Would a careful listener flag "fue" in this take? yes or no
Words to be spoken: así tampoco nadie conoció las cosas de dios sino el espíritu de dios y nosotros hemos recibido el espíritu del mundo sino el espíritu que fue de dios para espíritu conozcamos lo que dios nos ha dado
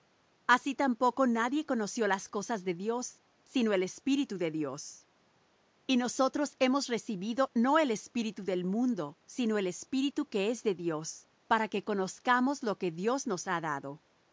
yes